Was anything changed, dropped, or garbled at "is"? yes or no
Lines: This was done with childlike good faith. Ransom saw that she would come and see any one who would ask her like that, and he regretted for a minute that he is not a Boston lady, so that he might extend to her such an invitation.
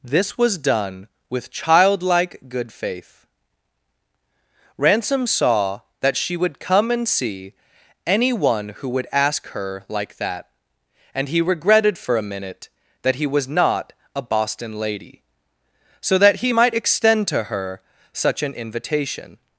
yes